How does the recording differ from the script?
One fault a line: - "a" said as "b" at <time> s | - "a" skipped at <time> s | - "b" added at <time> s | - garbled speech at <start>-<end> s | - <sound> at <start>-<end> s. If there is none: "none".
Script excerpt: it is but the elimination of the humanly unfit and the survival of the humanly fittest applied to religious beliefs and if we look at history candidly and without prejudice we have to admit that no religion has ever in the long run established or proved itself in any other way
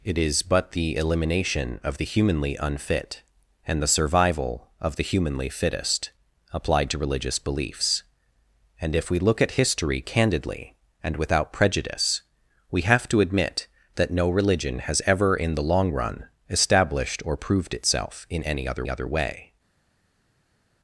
- "other" added at 18.9 s